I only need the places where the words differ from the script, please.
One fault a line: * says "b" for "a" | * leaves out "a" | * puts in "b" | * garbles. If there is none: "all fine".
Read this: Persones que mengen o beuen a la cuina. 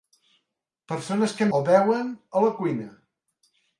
* leaves out "mengen"